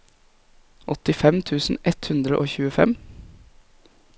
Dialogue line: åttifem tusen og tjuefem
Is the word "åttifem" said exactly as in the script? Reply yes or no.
yes